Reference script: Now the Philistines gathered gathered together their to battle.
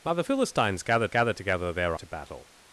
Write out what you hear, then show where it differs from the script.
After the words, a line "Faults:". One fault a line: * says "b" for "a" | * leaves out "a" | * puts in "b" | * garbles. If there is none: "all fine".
Now the Philistines gathered gathered together their to battle.
Faults:
all fine